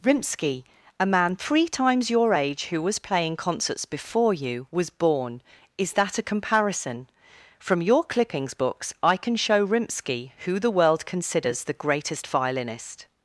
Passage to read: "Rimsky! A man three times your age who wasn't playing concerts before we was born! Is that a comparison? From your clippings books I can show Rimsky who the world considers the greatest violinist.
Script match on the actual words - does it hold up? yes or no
no